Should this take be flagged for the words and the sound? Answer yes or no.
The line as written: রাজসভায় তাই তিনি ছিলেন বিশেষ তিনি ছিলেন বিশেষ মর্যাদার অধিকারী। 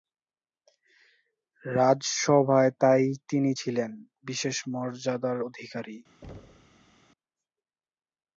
yes